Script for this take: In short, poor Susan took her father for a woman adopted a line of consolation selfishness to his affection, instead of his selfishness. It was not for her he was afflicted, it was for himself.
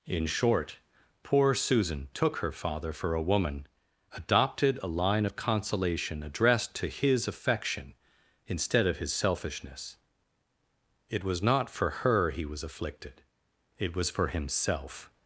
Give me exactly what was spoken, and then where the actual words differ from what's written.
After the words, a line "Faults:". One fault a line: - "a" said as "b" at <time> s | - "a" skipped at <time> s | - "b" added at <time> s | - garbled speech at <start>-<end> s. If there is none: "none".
In short, poor Susan took her father for a woman adopted a line of consolation addressed to his affection, instead of his selfishness. It was not for her he was afflicted, it was for himself.
Faults:
- "selfishness" said as "addressed" at 6.2 s